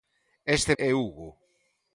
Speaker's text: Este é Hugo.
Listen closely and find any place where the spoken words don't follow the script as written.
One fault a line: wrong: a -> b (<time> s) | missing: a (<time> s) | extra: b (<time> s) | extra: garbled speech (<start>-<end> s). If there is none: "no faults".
no faults